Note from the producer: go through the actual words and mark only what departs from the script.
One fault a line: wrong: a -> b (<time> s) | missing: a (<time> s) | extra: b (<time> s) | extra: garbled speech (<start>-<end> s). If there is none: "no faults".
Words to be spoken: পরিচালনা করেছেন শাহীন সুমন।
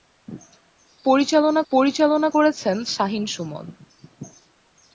extra: পরিচালনা (1.7 s)